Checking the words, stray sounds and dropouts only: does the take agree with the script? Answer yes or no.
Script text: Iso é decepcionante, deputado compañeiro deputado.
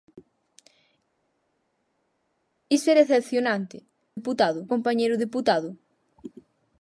yes